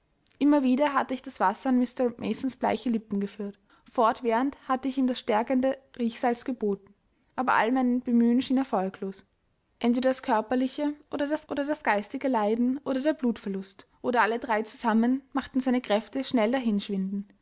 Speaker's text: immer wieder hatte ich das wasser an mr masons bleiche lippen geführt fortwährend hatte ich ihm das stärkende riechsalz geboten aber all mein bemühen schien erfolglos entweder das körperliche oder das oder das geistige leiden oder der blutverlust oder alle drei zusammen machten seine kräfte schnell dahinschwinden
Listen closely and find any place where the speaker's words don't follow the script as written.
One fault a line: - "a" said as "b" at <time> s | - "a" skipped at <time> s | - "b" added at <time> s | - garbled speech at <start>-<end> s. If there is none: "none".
none